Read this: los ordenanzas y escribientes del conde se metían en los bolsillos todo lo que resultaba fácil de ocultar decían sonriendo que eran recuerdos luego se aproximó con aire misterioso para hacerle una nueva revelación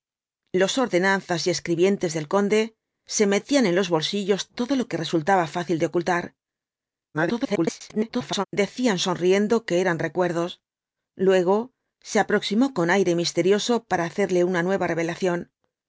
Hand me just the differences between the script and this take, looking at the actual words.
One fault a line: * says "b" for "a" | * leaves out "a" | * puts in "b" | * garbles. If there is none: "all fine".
* garbles